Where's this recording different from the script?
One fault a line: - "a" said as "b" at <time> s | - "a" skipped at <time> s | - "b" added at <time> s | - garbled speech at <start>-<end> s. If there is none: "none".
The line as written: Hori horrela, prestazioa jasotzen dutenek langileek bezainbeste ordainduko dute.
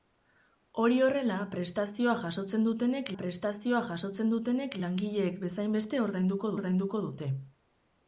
- "prestazioa jasotzen dutenek" added at 3.2 s
- "ordainduko" added at 6.6 s